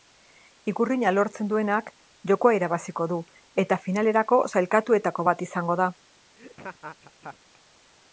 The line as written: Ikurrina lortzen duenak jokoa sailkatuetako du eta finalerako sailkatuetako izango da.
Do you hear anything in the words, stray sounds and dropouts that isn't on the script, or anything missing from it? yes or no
yes